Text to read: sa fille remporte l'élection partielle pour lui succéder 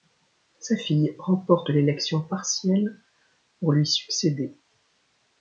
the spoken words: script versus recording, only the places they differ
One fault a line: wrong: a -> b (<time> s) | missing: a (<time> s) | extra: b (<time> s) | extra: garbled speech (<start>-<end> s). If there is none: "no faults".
no faults